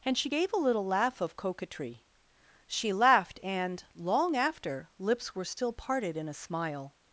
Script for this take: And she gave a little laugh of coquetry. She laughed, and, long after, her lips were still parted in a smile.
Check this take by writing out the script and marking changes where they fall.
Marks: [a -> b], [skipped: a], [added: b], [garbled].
And she gave a little laugh of coquetry. She laughed, and, long after, [skipped: her] lips were still parted in a smile.